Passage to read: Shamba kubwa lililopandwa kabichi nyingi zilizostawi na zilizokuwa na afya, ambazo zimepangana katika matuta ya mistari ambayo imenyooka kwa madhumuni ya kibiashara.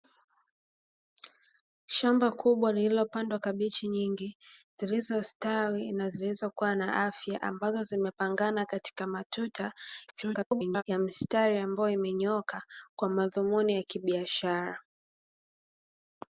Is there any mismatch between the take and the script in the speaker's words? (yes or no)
yes